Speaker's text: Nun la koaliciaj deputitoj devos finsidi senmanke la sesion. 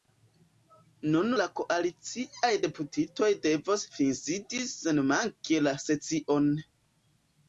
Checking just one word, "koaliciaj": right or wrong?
right